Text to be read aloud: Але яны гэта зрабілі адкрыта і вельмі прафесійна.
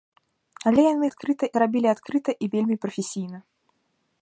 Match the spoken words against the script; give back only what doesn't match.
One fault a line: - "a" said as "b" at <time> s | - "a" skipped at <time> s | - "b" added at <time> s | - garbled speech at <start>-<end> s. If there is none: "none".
- "гэта" said as "адкрыта" at 1.1 s